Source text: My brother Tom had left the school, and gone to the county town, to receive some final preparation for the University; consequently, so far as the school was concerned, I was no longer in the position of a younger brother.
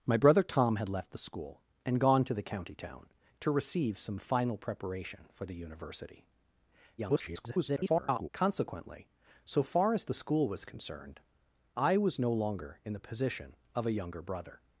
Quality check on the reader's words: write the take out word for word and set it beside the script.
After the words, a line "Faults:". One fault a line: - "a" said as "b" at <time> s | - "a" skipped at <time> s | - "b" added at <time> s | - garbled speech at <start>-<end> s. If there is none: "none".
My brother Tom had left the school, and gone to the county town, to receive some final preparation for the University; [garbled] consequently, so far as the school was concerned, I was no longer in the position of a younger brother.
Faults:
- garbled speech at 7.0-8.3 s